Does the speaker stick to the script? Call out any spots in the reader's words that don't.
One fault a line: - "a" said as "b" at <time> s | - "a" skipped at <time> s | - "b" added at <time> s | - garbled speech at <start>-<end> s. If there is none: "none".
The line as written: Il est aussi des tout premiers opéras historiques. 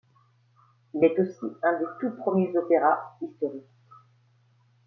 - "un" added at 1.6 s